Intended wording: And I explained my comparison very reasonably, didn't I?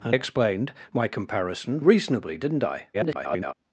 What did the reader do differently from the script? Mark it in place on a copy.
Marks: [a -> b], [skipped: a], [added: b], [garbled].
And [skipped: I] explained my comparison [skipped: very] reasonably, didn't I? [garbled]